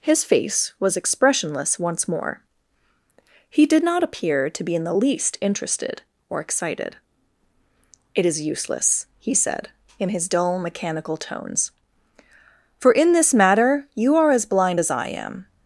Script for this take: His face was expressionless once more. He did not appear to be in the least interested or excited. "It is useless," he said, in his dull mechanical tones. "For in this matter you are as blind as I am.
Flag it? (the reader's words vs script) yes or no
no